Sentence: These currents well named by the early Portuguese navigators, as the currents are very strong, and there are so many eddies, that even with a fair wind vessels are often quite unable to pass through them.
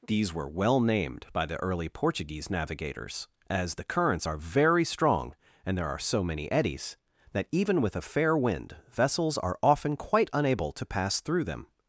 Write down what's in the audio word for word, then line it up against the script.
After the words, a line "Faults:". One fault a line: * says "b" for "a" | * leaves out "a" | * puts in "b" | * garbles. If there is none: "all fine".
These were well named by the early Portuguese navigators, as the currents are very strong, and there are so many eddies, that even with a fair wind vessels are often quite unable to pass through them.
Faults:
* says "were" for "currents"